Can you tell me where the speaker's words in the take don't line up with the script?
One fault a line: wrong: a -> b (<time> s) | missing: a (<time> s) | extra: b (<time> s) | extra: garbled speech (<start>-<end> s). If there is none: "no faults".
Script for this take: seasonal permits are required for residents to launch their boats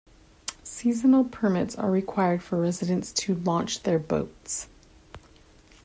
no faults